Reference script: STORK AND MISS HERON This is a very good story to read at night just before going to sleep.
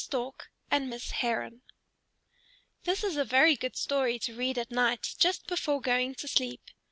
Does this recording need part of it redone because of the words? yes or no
no